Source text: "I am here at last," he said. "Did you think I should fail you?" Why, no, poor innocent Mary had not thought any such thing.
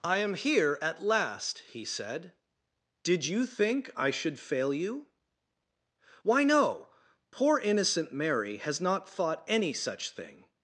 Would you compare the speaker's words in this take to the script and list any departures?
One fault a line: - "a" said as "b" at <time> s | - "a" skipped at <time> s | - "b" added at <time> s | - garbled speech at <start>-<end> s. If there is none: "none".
- "had" said as "has" at 8.6 s